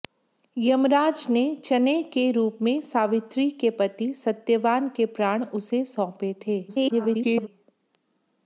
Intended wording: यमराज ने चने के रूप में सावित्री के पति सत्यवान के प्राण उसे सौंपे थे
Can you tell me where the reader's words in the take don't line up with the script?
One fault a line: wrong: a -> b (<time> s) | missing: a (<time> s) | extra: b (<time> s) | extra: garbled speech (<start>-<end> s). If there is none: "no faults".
extra: garbled speech (6.7-7.5 s)